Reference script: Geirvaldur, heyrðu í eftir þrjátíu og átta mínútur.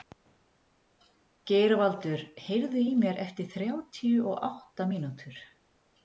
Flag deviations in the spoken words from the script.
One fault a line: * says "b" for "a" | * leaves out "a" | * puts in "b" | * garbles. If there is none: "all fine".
* puts in "mér"